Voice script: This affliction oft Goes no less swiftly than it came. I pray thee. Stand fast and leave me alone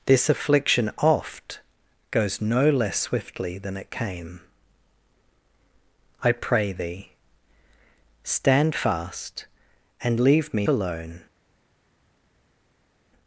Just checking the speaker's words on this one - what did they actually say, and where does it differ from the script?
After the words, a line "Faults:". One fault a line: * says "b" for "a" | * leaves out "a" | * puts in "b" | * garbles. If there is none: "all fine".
This affliction oft Goes no less swiftly than it came. I pray thee. Stand fast and leave me alone
Faults:
all fine